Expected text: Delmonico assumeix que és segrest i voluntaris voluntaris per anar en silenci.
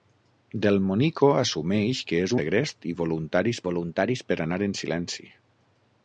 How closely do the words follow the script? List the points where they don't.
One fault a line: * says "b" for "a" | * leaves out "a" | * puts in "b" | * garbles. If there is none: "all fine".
all fine